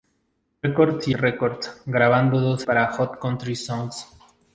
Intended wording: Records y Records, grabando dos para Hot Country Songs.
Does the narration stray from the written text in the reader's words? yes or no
no